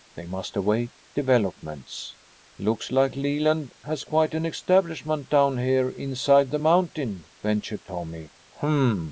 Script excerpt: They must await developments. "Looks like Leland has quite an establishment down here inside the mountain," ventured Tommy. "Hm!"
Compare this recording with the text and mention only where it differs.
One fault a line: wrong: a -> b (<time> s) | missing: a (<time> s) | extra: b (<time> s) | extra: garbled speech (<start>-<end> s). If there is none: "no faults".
no faults